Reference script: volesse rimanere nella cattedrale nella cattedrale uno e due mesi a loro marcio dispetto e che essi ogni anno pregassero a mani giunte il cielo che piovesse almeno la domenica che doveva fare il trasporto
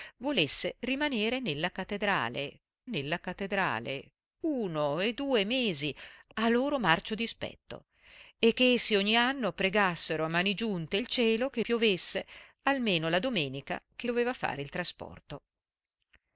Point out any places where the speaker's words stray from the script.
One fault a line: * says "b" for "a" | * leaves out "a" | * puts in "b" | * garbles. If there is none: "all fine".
all fine